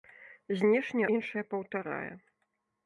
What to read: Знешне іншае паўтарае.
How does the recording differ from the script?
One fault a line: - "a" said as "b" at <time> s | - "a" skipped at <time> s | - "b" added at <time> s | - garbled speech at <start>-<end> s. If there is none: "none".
none